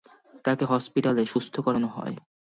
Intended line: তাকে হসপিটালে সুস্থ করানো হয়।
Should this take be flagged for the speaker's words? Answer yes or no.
no